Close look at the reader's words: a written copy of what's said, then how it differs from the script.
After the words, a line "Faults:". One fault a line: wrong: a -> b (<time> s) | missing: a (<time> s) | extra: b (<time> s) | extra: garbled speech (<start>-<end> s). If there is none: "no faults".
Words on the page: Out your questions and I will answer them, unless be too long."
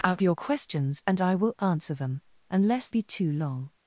Out your questions and I will answer them, unless be too long."
Faults:
no faults